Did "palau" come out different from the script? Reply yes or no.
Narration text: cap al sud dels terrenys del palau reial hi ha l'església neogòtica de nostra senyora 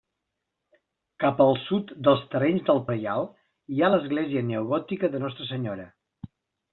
yes